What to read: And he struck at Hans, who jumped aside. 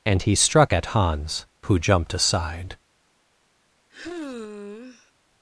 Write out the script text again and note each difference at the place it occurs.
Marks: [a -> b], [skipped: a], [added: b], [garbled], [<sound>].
And he struck at Hans, who jumped aside. [sigh]